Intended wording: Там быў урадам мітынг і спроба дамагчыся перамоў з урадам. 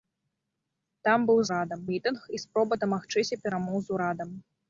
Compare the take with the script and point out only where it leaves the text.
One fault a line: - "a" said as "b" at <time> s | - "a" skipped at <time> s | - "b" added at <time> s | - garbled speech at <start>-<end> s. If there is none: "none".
none